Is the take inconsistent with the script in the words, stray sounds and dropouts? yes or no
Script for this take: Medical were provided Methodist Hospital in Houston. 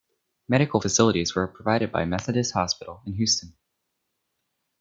yes